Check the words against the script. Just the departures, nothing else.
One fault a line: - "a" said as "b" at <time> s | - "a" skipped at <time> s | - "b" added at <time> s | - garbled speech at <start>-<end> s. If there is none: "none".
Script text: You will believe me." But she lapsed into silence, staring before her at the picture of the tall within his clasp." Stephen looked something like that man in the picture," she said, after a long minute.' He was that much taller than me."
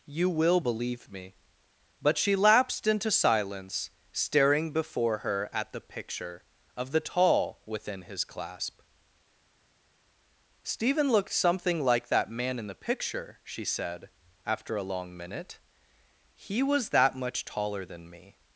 none